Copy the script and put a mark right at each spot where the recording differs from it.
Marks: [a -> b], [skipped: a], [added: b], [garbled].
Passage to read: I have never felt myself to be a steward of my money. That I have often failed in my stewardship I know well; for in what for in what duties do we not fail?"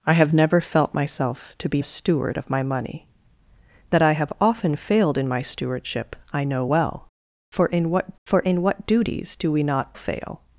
I have never felt myself to be a steward of my money. That I have often failed in my stewardship I know well; for in what for in what duties do we not fail?"